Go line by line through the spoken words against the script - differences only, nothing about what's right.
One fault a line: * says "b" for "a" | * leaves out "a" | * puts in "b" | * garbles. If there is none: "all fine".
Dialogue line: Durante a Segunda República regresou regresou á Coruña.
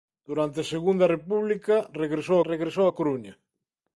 all fine